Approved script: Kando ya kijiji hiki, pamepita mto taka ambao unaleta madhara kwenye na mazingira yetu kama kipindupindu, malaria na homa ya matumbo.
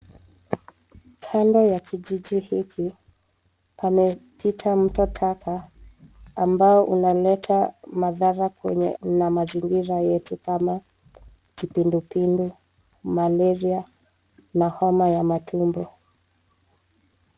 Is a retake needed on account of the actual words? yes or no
no